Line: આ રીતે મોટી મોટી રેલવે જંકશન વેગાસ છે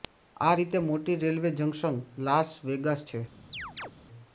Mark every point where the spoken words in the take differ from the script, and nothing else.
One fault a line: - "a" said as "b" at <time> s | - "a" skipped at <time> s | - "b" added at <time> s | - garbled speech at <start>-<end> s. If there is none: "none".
- "મોટી" skipped at 1.2 s
- "લાસ" added at 2.2 s